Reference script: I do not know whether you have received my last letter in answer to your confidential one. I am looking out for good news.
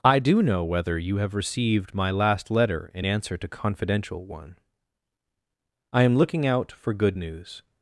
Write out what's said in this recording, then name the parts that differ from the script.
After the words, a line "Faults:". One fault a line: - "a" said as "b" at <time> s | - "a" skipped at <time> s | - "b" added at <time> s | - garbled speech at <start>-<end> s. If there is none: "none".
I do know whether you have received my last letter in answer to confidential one. I am looking out for good news.
Faults:
- "not" skipped at 0.4 s
- "your" skipped at 3.5 s